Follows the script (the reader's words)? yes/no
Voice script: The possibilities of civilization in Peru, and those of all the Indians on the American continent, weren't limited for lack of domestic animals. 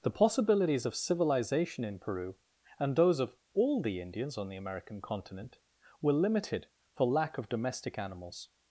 no